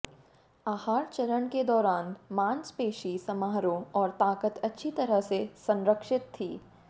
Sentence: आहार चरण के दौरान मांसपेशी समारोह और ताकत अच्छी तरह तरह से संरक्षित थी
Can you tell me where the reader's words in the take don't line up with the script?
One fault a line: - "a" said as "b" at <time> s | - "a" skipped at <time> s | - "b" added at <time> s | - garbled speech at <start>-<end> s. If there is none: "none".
- "तरह" skipped at 5.2 s